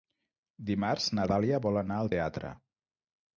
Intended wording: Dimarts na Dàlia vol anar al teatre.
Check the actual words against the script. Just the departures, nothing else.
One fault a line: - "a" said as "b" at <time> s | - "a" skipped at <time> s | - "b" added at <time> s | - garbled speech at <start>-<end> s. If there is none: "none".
none